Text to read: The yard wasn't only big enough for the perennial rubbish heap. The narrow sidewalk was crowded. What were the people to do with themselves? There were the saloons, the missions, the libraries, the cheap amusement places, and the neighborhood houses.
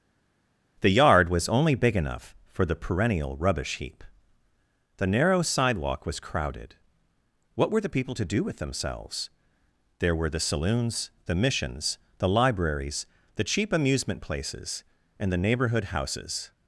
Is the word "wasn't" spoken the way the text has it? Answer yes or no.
no